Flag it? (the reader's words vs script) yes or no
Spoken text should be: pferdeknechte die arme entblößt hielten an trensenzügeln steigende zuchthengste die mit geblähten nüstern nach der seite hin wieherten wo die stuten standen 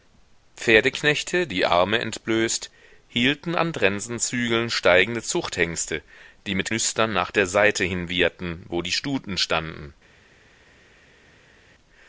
yes